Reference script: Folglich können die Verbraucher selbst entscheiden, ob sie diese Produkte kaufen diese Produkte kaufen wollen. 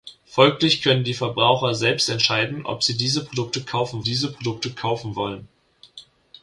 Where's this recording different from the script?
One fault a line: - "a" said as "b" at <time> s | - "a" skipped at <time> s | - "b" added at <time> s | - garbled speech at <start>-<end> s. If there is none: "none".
none